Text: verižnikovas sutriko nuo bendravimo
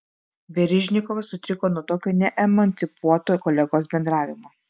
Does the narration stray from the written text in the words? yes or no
yes